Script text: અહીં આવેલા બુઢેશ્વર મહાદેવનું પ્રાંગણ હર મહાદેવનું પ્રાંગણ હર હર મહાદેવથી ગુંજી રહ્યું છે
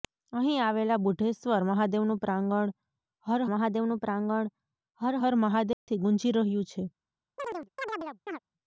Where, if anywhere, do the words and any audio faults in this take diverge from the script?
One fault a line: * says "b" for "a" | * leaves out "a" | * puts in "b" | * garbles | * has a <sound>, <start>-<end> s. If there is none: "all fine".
* has a dropout, 5.7-5.9 s
* has a chirp, 7.4-8.4 s